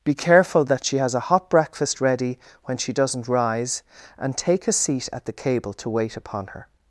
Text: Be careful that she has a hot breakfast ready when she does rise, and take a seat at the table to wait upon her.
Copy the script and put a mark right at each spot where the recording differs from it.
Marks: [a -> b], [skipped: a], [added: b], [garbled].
Be careful that she has a hot breakfast ready when she [does -> doesn't] rise, and take a seat at the [table -> cable] to wait upon her.